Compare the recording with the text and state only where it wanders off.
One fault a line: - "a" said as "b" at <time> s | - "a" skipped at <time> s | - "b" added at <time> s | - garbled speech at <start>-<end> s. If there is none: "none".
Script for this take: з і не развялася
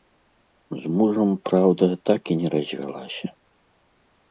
- "мужам праўда так" added at 1.0 s